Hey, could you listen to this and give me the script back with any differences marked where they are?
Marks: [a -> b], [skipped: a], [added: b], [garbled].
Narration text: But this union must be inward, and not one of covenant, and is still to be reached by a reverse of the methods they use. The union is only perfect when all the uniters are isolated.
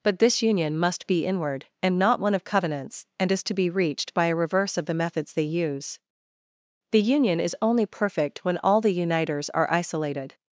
But this union must be inward, and not one of [covenant, -> covenants] and is [skipped: still] to be reached by a reverse of the methods they use. The union is only perfect when all the uniters are isolated.